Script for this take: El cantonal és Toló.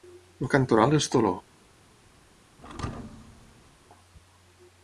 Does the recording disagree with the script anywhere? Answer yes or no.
no